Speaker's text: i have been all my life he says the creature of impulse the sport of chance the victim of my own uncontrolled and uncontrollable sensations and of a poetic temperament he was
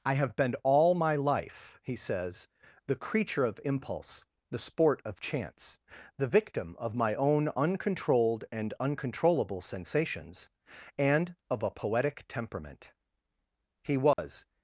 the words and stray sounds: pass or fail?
fail